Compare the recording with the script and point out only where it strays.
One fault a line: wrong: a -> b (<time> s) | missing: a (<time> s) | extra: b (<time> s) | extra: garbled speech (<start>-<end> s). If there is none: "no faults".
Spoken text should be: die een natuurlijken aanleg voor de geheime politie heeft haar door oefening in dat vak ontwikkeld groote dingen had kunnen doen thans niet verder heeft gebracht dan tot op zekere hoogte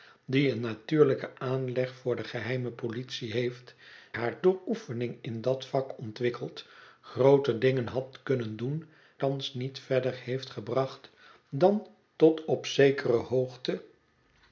no faults